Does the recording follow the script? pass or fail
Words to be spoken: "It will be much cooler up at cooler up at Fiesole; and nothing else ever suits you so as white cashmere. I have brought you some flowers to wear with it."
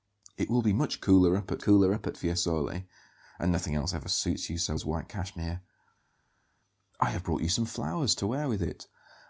pass